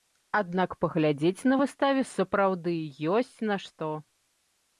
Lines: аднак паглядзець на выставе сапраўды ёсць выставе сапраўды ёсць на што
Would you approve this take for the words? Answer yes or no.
no